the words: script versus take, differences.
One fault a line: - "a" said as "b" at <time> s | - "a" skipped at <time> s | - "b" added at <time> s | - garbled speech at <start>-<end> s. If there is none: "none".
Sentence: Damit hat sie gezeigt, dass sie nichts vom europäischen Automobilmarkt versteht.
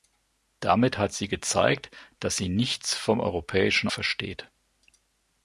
- "Automobilmarkt" skipped at 3.9 s